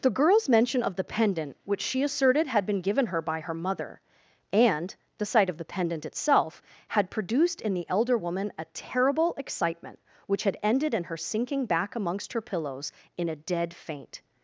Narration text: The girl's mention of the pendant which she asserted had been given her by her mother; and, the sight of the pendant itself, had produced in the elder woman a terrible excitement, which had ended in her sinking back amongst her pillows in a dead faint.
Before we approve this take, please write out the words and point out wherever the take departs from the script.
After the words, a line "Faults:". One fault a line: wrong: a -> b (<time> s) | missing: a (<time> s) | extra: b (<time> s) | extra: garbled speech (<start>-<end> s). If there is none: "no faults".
The girl's mention of the pendant which she asserted had been given her by her mother; and, the sight of the pendant itself, had produced in the elder woman a terrible excitement, which had ended in her sinking back amongst her pillows in a dead faint.
Faults:
no faults